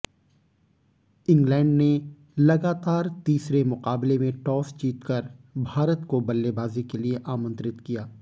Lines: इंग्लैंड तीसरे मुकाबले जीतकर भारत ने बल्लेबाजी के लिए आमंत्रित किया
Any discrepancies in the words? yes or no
yes